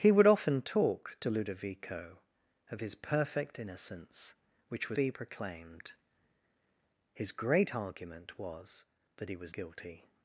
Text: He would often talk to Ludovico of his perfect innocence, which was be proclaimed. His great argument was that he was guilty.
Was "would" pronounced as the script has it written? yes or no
yes